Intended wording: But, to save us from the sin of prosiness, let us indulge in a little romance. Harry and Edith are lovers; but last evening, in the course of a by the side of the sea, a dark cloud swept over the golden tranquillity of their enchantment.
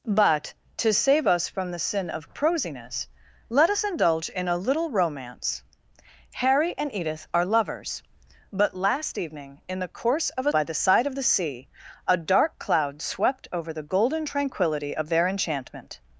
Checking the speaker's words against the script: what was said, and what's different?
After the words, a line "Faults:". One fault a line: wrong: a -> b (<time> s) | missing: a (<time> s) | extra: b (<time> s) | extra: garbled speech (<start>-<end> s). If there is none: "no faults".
But, to save us from the sin of prosiness, let us indulge in a little romance. Harry and Edith are lovers; but last evening, in the course of a by the side of the sea, a dark cloud swept over the golden tranquillity of their enchantment.
Faults:
no faults